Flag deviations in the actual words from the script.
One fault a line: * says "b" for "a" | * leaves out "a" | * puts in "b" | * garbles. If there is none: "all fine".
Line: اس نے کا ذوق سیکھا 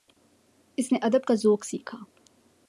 * puts in "ادب"